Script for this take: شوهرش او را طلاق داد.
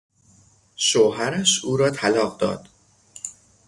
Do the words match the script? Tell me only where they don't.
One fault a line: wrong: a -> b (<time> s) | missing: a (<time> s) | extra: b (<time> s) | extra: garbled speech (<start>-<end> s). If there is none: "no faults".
no faults